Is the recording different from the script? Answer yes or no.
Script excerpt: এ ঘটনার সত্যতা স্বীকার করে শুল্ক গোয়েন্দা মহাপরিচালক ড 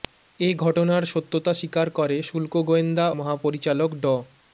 no